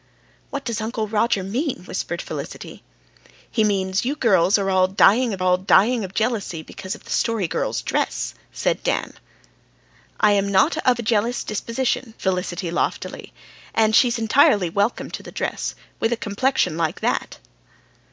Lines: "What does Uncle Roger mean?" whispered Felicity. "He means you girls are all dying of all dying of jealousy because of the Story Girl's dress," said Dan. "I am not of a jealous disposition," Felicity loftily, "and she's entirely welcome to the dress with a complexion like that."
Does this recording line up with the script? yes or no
yes